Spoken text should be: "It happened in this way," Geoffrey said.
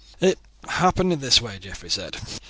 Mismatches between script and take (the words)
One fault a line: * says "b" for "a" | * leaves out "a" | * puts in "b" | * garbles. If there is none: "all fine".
all fine